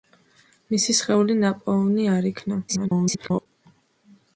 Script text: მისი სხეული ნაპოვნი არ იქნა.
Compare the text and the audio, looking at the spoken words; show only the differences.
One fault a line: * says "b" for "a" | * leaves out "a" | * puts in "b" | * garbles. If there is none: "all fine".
* garbles